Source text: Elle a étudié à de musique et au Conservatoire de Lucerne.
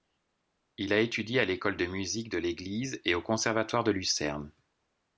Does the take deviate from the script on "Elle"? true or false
true